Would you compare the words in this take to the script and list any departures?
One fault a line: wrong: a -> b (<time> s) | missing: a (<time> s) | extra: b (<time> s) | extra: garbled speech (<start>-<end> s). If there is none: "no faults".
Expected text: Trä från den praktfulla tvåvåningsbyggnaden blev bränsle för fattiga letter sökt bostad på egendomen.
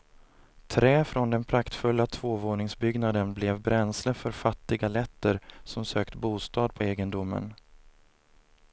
extra: som (5.6 s)